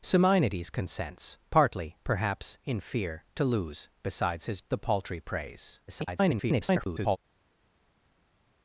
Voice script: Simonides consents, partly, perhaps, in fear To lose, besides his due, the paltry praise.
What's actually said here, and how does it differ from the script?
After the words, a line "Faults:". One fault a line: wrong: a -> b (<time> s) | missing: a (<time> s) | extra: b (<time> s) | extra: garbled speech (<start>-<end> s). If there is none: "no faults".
Simonides consents, partly, perhaps, in fear To lose, besides his the paltry praise. [garbled]
Faults:
missing: due (4.6 s)
extra: garbled speech (5.9-7.2 s)